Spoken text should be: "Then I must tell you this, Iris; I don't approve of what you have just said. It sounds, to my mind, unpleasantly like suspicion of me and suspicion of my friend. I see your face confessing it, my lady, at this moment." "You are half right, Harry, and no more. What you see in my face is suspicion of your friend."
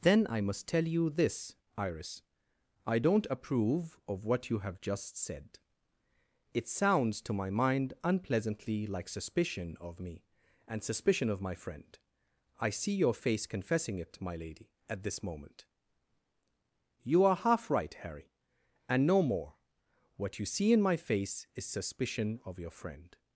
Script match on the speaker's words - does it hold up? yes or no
yes